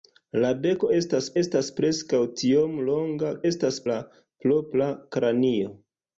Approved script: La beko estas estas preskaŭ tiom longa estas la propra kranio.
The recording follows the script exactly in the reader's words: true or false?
true